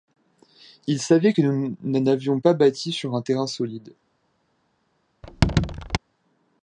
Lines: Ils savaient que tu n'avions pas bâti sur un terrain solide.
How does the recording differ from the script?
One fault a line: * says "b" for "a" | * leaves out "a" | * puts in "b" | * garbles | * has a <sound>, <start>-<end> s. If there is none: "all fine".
* says "nous" for "tu"
* has a squeak, 5.2-6.0 s